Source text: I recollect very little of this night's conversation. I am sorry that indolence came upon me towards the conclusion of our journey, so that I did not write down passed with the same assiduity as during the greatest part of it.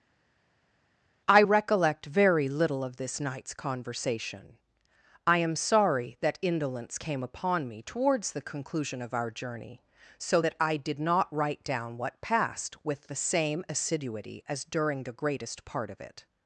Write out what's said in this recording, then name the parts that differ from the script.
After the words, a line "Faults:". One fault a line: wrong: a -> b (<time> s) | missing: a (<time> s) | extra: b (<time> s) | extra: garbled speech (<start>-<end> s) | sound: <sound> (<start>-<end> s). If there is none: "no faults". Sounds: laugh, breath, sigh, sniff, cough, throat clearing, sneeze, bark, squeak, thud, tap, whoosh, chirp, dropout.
I recollect very little of this night's conversation. I am sorry that indolence came upon me towards the conclusion of our journey, so that I did not write down what passed with the same assiduity as during the greatest part of it.
Faults:
extra: what (12.0 s)